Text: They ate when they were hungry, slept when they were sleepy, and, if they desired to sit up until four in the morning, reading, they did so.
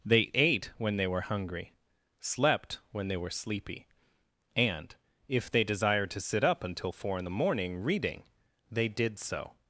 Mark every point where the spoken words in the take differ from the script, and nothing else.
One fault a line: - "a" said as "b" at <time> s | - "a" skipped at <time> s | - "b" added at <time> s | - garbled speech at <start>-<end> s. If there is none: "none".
none